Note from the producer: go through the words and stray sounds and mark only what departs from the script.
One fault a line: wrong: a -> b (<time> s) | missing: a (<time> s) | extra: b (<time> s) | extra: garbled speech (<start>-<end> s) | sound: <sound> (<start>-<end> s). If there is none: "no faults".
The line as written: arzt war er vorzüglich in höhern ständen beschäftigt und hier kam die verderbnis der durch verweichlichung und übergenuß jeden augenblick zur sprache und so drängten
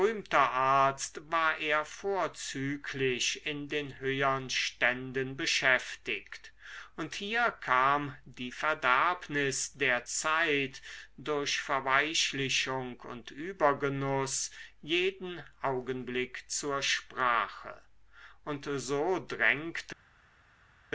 extra: den (3.7 s)
extra: zeit (10.1 s)